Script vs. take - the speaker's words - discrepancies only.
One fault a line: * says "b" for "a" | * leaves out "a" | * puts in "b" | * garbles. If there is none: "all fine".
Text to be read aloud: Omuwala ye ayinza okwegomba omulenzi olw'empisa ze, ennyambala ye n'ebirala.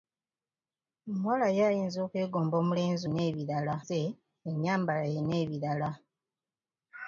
* says "n'ebirala" for "olw'empisa"